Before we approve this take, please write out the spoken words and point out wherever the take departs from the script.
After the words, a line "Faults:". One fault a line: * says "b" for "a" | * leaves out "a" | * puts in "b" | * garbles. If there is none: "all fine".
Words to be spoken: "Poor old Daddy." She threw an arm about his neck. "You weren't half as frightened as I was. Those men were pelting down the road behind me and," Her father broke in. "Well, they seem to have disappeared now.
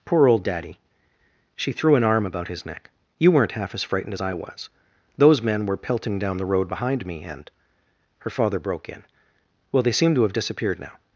"Poor old Daddy." She threw an arm about his neck. "You weren't half as frightened as I was. Those men were pelting down the road behind me and," Her father broke in. "Well, they seem to have disappeared now.
Faults:
all fine